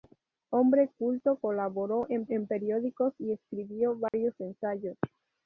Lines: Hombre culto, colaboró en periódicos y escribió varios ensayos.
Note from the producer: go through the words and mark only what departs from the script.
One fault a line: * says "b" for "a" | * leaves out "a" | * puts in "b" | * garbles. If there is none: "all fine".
* puts in "en"